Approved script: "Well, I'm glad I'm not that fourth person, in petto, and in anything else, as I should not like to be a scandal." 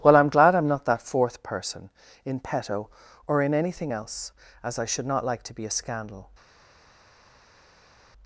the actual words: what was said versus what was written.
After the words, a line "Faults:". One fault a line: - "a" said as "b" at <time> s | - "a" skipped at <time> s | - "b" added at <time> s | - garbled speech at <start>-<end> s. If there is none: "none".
"Well, I'm glad I'm not that fourth person, in petto, or in anything else, as I should not like to be a scandal."
Faults:
- "and" said as "or" at 3.3 s